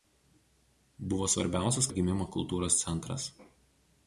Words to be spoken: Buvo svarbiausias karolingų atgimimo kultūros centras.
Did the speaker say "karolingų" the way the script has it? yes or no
no